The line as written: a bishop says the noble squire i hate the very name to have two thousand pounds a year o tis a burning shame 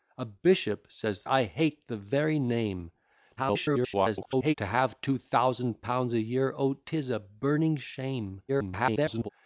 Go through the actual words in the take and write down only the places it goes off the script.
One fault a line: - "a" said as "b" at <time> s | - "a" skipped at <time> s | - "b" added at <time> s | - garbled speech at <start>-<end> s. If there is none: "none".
- "the noble squire" skipped at 1.2 s
- garbled speech at 3.4-4.5 s
- garbled speech at 8.5-9.3 s